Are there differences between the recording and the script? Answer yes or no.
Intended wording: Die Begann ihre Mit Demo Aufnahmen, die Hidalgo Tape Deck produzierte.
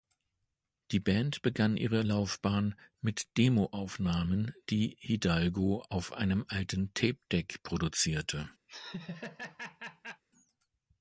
yes